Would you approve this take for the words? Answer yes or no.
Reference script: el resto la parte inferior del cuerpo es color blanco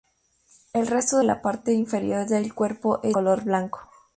yes